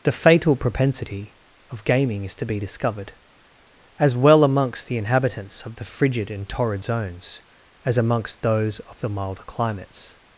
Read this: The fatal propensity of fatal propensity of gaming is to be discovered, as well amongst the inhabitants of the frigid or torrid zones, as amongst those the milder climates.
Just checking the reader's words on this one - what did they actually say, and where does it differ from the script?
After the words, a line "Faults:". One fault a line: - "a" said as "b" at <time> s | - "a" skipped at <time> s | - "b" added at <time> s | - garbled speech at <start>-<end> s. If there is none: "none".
The fatal propensity of gaming is to be discovered, as well amongst the inhabitants of the frigid and torrid zones, as amongst those of the milder climates.
Faults:
- "fatal propensity of" skipped at 1.8 s
- "or" said as "and" at 6.3 s
- "of" added at 8.8 s